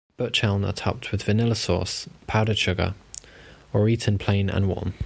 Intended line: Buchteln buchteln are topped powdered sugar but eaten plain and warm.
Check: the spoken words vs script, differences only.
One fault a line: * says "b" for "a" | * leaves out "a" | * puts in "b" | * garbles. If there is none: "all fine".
* leaves out "buchteln"
* puts in "with vanilla sauce"
* says "or" for "but"